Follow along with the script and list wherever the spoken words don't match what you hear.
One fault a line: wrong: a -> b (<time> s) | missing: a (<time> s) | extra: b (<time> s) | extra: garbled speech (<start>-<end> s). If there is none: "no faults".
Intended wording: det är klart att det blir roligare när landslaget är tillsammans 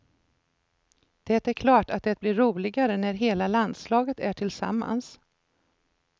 extra: hela (3.1 s)